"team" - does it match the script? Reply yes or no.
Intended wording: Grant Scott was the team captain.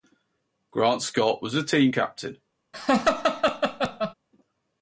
yes